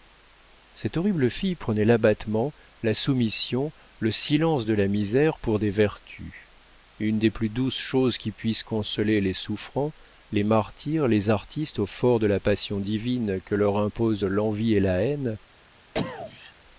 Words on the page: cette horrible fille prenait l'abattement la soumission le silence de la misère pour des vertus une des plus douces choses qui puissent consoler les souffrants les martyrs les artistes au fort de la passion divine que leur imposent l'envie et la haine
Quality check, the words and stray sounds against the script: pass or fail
fail